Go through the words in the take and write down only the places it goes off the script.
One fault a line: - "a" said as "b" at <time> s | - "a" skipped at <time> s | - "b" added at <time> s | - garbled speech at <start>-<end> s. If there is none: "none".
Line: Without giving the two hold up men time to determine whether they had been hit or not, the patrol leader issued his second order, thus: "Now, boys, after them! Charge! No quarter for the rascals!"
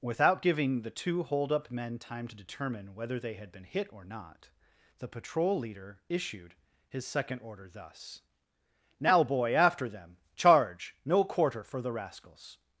- "boys" said as "boy" at 9.2 s